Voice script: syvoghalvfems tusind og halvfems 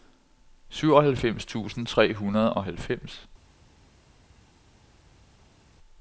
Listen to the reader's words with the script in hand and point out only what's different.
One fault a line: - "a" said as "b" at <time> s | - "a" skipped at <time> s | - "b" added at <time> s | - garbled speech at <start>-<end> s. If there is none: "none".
- "tre hundrede" added at 1.9 s